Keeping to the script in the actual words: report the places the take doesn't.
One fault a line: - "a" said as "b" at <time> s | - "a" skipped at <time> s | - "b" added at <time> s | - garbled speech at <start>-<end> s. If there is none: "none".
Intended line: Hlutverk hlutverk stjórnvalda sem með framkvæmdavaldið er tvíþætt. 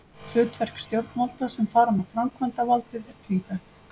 - "hlutverk" skipped at 0.8 s
- "fara" added at 1.8 s